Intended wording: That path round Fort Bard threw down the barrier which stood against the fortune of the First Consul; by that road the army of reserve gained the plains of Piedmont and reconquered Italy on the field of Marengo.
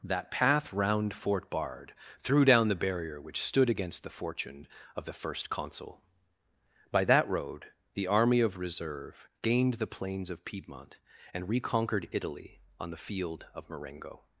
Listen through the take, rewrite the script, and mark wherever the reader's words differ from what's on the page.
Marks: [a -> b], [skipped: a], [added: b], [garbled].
That path round Fort Bard threw down the barrier which stood against the fortune of the First Consul; by that road the army of reserve gained the plains of Piedmont and reconquered Italy on the field of Marengo.